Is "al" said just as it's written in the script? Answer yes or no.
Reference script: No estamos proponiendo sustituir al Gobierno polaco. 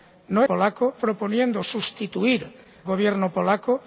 no